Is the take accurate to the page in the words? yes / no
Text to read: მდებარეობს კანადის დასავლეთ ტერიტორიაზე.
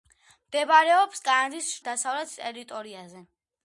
yes